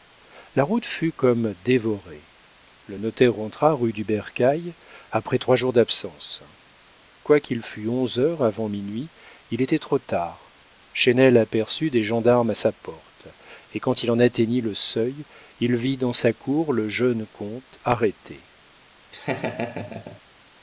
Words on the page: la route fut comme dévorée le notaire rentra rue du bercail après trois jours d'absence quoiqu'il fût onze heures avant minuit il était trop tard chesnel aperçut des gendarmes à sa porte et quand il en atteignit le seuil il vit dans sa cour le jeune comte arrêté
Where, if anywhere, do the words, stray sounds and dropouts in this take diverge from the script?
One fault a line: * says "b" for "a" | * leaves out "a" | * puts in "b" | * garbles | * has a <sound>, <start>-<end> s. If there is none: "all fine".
* has a laugh, 19.1-20.2 s